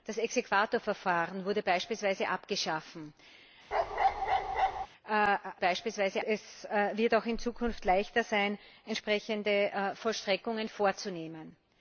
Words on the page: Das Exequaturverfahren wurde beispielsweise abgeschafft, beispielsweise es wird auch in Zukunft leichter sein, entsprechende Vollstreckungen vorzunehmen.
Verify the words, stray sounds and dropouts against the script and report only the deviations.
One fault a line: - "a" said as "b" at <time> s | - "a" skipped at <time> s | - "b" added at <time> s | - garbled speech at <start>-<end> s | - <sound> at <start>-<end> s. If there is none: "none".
- bark at 3.7-4.9 s